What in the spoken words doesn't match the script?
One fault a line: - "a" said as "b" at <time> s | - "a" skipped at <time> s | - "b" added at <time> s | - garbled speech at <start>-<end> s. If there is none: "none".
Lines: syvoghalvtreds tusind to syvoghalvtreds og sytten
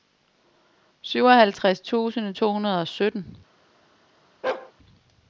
- "syvoghalvtreds" said as "hundrede" at 2.5 s